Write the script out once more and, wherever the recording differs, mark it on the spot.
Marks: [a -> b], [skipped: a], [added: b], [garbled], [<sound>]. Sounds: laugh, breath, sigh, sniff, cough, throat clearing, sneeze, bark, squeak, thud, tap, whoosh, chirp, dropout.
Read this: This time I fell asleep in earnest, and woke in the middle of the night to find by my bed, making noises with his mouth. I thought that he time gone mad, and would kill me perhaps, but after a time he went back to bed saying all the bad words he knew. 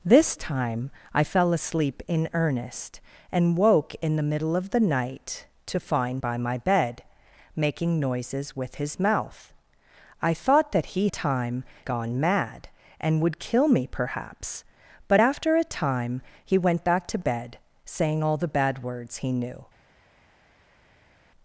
This time I fell asleep in earnest, and woke in the middle of the night to find by my bed, making noises with his mouth. I thought that he time gone mad, and would kill me perhaps, but after a time he went back to bed saying all the bad words he knew.